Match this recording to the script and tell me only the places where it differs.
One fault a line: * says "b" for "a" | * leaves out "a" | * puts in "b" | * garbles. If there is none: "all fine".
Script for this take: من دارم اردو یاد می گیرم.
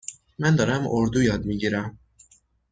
all fine